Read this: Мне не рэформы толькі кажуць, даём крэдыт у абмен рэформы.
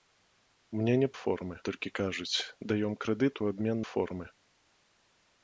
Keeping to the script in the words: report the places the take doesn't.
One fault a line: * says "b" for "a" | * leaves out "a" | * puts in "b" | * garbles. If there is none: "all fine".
all fine